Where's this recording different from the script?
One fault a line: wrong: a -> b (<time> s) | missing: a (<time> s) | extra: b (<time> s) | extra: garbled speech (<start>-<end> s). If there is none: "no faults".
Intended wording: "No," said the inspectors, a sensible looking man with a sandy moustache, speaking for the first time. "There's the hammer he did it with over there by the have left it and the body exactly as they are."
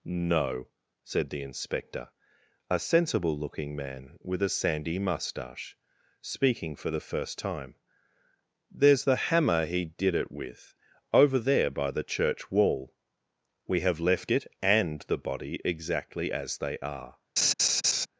wrong: inspectors -> inspector (1.4 s)
extra: church wall We (12.0 s)